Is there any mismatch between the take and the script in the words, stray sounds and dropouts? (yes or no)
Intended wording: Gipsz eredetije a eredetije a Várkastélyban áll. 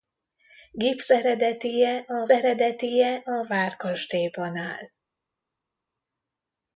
no